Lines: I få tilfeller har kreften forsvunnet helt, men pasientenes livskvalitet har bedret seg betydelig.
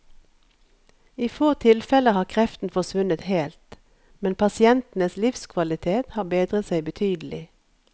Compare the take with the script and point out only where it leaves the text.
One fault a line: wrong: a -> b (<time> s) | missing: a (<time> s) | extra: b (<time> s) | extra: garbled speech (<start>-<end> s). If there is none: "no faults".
no faults